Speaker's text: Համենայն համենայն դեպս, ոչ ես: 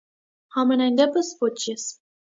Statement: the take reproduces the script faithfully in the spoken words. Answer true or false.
false